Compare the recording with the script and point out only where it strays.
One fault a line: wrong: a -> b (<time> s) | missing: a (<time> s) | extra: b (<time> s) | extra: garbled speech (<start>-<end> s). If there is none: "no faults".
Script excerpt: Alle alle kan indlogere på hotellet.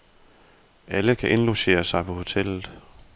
missing: alle (1.1 s)
extra: sig (1.8 s)